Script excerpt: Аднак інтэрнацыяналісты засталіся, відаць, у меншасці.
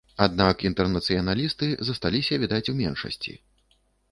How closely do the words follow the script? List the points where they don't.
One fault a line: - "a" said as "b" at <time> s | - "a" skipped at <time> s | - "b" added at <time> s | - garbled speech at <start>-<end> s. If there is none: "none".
none